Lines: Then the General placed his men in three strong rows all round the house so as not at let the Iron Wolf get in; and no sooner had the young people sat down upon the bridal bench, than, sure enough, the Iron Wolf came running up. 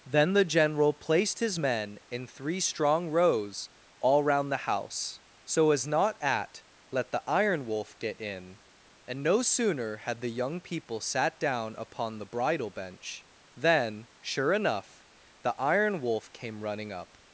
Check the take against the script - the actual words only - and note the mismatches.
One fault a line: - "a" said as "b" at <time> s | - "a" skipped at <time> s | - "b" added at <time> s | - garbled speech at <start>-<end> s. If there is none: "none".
none